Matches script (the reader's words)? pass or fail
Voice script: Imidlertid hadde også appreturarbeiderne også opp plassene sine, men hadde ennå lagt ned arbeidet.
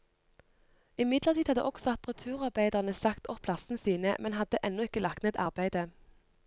fail